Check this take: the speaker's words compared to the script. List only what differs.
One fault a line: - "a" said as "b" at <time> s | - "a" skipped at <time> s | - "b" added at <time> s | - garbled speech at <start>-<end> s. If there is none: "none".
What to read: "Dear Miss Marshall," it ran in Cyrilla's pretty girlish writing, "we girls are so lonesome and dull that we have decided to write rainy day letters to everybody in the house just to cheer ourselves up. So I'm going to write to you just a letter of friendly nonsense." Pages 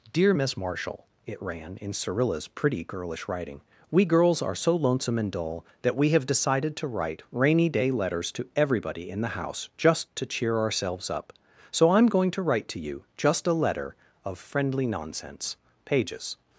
none